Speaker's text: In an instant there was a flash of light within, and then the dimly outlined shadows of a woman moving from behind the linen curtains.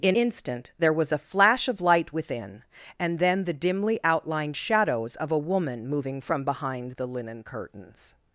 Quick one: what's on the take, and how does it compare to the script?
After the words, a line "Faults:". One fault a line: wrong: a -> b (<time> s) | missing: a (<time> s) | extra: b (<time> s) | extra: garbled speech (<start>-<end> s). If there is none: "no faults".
In instant there was a flash of light within, and then the dimly outlined shadows of a woman moving from behind the linen curtains.
Faults:
missing: an (0.2 s)